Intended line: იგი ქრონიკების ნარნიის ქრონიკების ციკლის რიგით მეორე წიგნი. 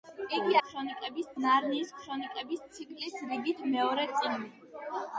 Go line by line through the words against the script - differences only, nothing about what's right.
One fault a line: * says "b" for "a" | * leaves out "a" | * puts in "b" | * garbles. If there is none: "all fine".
all fine